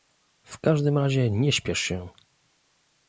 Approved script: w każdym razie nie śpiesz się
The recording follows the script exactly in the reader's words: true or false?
true